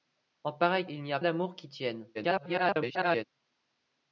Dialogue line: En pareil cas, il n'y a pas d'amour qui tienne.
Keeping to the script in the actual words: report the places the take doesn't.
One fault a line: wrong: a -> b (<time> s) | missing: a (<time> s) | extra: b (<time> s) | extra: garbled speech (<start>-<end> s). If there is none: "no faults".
missing: cas (0.9 s)
missing: pas (1.2 s)
extra: garbled speech (2.1-3.2 s)